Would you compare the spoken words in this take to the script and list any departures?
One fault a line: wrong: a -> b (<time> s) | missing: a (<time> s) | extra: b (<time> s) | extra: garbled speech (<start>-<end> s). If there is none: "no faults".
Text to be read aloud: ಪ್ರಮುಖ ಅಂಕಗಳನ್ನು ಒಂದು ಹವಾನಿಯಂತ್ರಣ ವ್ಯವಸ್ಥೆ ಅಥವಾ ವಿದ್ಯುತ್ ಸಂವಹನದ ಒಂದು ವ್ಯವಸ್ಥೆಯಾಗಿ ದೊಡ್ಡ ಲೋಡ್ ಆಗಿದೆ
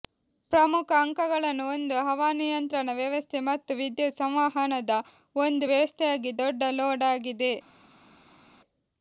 wrong: ಅಥವಾ -> ಮತ್ತು (3.5 s)